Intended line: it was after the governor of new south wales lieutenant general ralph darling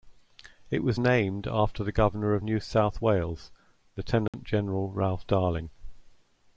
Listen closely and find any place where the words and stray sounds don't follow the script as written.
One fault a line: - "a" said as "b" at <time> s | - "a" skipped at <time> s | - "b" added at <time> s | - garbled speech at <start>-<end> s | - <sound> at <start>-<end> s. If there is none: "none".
- "named" added at 1.0 s
- dropout at 4.3-4.3 s